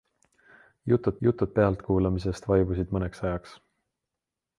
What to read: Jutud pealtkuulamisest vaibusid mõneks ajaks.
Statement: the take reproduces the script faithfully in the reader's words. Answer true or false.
false